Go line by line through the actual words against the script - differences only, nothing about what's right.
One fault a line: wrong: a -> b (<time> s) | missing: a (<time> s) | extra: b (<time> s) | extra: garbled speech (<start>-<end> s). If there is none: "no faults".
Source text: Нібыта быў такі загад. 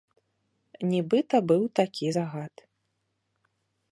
no faults